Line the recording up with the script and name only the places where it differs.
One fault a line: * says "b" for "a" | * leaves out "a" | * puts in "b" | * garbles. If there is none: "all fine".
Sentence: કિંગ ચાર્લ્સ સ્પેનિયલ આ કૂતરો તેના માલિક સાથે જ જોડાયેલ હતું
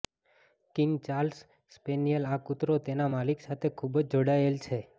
* puts in "ખૂબ"
* says "છે" for "હતું"